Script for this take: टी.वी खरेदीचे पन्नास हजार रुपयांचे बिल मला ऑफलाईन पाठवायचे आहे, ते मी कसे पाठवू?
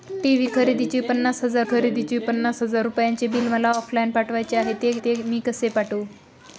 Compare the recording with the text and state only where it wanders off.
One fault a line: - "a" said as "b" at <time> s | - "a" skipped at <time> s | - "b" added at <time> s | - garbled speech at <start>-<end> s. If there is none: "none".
- "खरेदीचे पन्नास हजार" added at 1.6 s
- "ते" added at 5.0 s